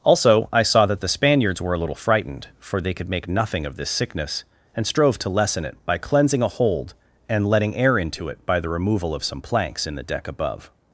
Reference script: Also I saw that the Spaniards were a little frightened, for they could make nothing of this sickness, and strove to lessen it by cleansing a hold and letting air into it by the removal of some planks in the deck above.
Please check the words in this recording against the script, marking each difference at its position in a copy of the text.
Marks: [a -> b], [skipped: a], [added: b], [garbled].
Also I saw that the Spaniards were a little frightened, for they could make nothing of this sickness, and strove to lessen it by cleansing a hold and letting air into it by the removal of some planks in the deck above.